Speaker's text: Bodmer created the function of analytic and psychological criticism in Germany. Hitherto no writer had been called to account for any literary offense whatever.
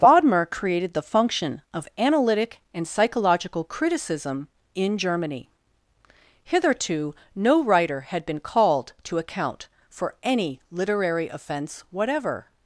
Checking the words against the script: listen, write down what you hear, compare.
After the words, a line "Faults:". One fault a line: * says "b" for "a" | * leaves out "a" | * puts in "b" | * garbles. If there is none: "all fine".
Bodmer created the function of analytic and psychological criticism in Germany. Hitherto no writer had been called to account for any literary offense whatever.
Faults:
all fine